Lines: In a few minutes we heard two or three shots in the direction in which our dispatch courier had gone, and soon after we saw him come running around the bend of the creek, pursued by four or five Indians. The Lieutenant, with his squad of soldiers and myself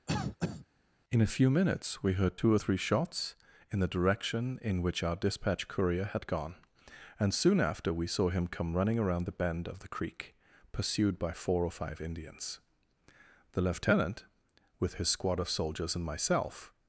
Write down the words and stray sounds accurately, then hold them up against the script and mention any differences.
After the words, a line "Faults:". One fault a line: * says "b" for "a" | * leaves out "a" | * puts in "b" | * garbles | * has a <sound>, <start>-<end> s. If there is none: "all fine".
In a few minutes we heard two or three shots in the direction in which our dispatch courier had gone, and soon after we saw him come running around the bend of the creek, pursued by four or five Indians. The Lieutenant, with his squad of soldiers and myself
Faults:
* has a cough, 0.1-0.7 s